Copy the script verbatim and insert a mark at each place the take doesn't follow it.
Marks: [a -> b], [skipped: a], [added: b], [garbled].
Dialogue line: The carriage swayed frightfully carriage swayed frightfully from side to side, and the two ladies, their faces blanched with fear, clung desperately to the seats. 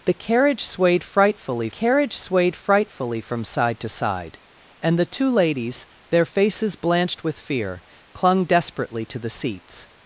The carriage swayed frightfully carriage swayed frightfully from side to side, and the two ladies, their faces blanched with fear, clung desperately to the seats.